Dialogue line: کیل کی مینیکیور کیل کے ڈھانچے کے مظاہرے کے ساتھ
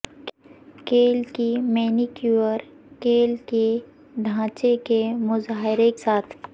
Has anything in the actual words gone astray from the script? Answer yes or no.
yes